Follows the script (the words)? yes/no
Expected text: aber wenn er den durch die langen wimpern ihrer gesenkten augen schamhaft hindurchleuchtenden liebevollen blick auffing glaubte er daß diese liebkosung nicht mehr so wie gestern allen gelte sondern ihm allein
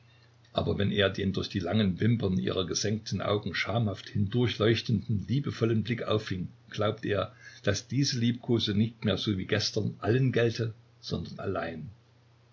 no